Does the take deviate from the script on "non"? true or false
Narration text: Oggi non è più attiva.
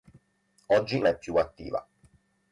true